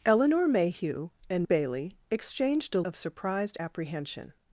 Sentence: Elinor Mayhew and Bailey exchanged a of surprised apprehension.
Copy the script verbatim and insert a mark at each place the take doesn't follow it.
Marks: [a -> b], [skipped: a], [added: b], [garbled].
Elinor Mayhew and Bailey exchanged a of surprised apprehension.